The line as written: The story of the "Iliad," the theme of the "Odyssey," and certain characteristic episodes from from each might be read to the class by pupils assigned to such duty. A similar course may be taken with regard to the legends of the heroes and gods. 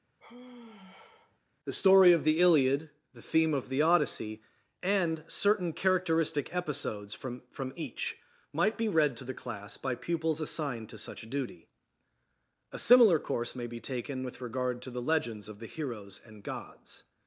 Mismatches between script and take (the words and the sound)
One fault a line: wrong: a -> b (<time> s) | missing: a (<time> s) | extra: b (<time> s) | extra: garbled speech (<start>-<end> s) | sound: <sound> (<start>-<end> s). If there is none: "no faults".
sound: sigh (0.2-1.4 s)